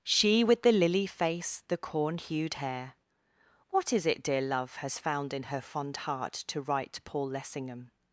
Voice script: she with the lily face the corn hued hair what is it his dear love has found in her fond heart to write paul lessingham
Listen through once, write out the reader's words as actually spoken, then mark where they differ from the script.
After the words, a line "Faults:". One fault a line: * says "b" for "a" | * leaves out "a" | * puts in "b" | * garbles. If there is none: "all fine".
she with the lily face the corn hued hair what is it dear love has found in her fond heart to write paul lessingham
Faults:
* leaves out "his"